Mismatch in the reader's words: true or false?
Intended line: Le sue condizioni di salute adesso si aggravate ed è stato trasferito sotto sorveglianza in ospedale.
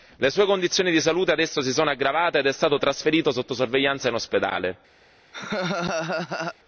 true